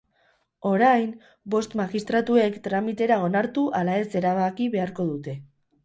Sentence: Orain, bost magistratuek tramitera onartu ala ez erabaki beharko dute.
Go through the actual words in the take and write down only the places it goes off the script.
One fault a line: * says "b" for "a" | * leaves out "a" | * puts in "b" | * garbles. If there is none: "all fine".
all fine